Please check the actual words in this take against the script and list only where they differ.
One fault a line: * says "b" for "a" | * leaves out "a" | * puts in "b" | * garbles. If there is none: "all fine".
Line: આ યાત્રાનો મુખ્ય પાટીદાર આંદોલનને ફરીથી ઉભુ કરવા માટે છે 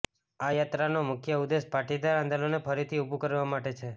* puts in "ઉદ્દેશ"